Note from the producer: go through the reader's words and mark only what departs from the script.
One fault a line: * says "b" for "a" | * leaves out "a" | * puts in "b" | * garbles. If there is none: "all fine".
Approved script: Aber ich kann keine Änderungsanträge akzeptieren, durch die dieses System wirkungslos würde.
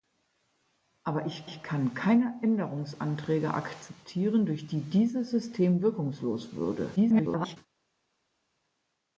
* puts in "ich"
* garbles